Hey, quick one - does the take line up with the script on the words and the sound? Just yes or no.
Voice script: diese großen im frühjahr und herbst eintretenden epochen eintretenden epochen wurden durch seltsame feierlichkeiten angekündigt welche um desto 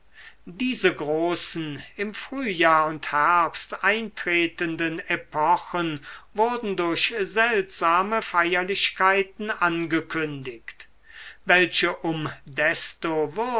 no